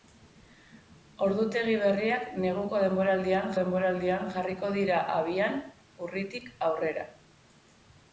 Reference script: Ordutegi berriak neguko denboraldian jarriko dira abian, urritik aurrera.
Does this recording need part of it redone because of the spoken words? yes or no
yes